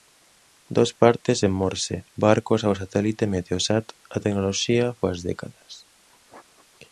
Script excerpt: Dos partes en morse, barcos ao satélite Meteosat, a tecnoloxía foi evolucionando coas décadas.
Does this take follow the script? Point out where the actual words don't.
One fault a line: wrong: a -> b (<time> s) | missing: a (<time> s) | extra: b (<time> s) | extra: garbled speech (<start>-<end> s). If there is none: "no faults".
missing: foi evolucionando (4.9 s)